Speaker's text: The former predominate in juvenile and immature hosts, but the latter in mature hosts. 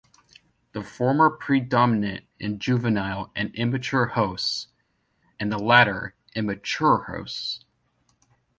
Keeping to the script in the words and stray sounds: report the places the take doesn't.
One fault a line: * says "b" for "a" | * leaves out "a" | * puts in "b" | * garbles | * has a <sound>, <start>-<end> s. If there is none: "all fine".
* says "and" for "but"